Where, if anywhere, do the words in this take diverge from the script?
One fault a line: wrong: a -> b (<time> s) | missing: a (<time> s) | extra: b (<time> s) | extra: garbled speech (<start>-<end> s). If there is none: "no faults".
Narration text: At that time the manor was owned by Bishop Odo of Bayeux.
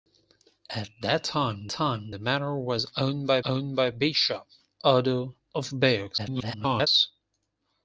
extra: time (1.7 s)
extra: owned by (3.5 s)
extra: garbled speech (6.2-6.9 s)